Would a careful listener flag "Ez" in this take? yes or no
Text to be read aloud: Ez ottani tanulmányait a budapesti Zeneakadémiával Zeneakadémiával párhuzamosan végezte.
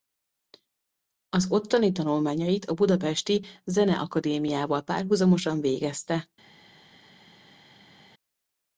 yes